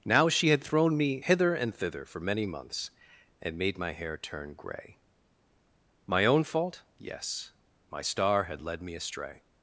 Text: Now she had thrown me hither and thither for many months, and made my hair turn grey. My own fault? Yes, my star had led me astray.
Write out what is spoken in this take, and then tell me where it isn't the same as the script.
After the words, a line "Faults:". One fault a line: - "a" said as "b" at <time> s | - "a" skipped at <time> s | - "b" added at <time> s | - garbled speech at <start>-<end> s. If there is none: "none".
Now she had thrown me hither and thither for many months, and made my hair turn grey. My own fault? Yes, my star had led me astray.
Faults:
none